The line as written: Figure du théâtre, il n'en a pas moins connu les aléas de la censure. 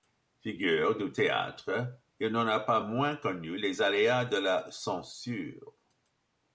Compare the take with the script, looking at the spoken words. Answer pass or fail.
pass